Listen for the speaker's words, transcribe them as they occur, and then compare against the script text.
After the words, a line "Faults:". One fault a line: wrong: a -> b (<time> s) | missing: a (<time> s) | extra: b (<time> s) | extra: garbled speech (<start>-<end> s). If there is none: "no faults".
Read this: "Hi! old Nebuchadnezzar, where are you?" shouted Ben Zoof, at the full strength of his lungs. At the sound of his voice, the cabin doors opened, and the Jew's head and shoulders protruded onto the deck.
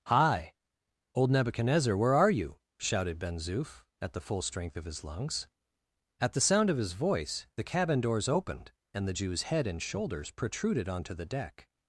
"Hi! old Nebuchadnezzar, where are you?" shouted Ben Zoof, at the full strength of his lungs. At the sound of his voice, the cabin doors opened, and the Jew's head and shoulders protruded onto the deck.
Faults:
no faults